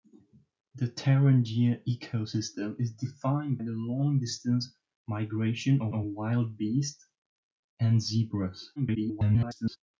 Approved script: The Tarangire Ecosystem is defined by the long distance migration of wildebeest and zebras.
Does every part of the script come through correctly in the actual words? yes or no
no